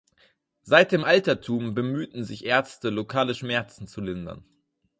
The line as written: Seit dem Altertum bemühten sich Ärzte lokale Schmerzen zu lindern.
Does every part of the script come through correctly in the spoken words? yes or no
yes